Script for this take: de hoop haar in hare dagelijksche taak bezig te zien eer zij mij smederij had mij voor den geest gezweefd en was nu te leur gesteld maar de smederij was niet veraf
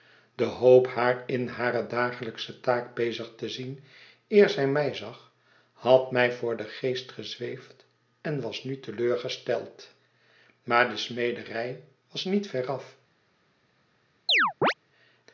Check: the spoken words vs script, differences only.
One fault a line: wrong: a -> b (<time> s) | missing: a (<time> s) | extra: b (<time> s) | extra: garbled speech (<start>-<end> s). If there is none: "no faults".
wrong: smederij -> zag (4.9 s)